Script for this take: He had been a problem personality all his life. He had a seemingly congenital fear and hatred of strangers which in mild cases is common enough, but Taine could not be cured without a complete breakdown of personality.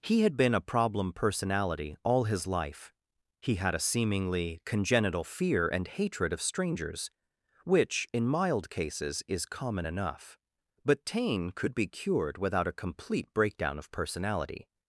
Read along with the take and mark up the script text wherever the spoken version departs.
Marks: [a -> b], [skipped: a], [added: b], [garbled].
He had been a problem personality all his life. He had a seemingly congenital fear and hatred of strangers which in mild cases is common enough, but Taine could [skipped: not] be cured without a complete breakdown of personality.